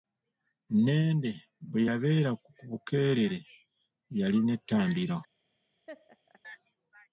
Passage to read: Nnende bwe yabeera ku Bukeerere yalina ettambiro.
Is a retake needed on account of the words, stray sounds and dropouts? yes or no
yes